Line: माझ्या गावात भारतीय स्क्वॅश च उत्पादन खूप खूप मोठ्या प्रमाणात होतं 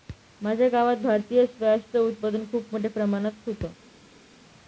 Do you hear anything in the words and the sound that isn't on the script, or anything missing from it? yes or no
yes